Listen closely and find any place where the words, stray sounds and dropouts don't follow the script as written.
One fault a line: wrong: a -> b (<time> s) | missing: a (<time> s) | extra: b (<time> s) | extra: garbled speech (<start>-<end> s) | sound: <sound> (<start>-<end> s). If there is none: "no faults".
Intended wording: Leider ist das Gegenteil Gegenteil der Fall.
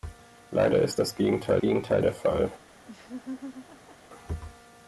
sound: laugh (2.9-4.0 s)